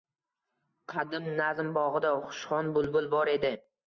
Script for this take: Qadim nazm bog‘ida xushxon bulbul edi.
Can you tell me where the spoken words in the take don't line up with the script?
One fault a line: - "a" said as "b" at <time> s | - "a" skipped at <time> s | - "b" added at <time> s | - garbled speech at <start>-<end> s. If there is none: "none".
- "bor" added at 3.1 s